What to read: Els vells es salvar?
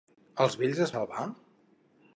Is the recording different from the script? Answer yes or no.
no